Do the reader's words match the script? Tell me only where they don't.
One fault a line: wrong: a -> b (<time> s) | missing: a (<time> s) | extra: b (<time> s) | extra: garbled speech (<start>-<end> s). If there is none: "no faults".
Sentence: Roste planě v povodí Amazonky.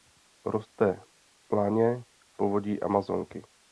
no faults